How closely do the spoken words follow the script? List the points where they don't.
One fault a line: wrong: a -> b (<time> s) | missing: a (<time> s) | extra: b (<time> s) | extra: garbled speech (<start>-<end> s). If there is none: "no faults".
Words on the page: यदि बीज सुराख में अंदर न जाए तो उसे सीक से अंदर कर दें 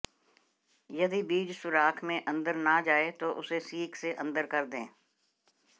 no faults